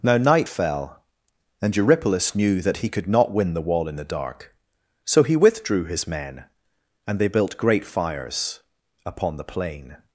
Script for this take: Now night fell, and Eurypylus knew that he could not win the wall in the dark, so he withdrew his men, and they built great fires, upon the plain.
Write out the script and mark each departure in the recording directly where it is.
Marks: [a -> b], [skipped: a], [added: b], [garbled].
Now night fell, and Eurypylus knew that he could not win the wall in the dark, so he withdrew his men, and they built great fires, upon the plain.